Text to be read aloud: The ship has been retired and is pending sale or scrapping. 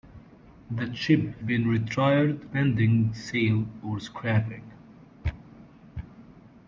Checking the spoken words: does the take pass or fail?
fail